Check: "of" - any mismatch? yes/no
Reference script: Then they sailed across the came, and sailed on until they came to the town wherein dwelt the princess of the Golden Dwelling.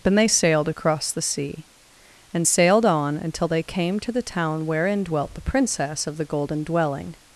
no